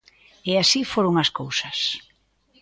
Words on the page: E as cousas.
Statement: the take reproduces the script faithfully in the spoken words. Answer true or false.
false